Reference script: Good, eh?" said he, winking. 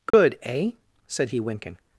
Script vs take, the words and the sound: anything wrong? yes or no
yes